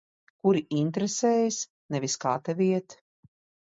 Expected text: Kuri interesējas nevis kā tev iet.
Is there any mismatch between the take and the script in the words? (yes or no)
no